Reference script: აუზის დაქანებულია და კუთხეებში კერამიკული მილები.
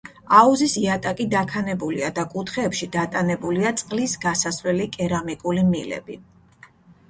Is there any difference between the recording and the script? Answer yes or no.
yes